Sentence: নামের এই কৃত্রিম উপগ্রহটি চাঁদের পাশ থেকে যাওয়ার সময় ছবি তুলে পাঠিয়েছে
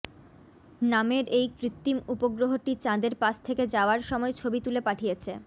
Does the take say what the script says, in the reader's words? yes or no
yes